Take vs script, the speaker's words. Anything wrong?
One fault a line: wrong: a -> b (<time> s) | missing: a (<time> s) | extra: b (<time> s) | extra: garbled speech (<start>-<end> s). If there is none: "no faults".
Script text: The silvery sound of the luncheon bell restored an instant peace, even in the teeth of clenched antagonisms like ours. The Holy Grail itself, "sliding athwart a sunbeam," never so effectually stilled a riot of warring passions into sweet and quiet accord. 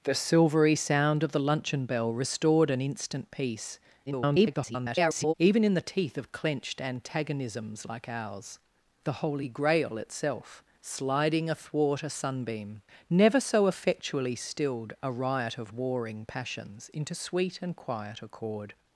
extra: garbled speech (4.1-5.3 s)